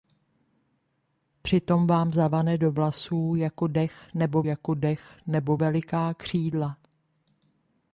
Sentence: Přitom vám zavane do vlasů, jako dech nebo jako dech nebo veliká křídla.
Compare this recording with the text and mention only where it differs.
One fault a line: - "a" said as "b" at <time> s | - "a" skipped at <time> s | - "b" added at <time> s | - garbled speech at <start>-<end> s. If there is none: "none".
none